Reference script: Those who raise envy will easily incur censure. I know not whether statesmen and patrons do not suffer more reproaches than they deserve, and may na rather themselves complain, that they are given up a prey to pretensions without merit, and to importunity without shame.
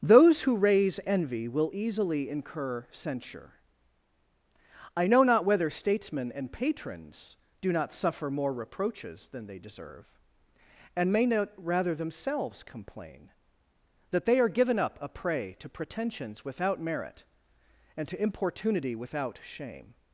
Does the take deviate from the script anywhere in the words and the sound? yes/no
yes